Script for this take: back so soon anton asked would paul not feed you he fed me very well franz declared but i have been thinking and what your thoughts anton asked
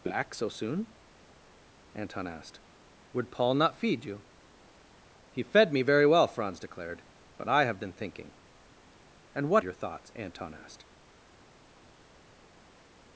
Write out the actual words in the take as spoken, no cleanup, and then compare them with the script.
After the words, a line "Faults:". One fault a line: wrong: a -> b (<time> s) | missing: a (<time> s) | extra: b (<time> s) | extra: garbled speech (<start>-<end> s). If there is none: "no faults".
back so soon anton asked would paul not feed you he fed me very well franz declared but i have been thinking and what your thoughts anton asked
Faults:
no faults